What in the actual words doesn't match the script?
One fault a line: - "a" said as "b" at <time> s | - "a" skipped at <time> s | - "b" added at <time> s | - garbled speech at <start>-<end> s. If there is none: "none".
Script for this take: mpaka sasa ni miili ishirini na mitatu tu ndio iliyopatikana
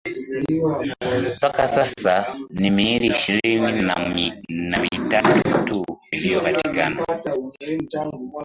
- "ndio" skipped at 5.9 s